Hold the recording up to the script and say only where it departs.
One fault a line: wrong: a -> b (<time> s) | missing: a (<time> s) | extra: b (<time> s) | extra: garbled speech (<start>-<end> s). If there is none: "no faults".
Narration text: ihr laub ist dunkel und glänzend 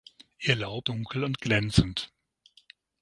missing: ist (0.9 s)